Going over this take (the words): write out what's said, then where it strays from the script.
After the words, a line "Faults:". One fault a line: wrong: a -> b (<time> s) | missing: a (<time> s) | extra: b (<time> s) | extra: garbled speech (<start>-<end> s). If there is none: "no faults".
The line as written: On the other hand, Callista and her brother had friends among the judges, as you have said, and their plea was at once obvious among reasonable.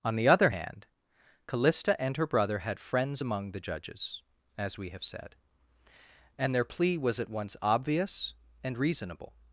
On the other hand, Callista and her brother had friends among the judges, as we have said, and their plea was at once obvious and reasonable.
Faults:
wrong: you -> we (4.8 s)
wrong: among -> and (8.6 s)